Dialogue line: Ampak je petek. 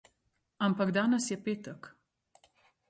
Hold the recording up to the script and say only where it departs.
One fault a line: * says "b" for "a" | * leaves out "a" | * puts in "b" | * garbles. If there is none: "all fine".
* puts in "danes"